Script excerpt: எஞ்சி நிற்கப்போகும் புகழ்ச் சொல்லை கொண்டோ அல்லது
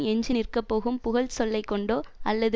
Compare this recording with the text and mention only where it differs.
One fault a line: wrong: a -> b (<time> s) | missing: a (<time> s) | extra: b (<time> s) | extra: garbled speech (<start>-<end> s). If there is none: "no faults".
no faults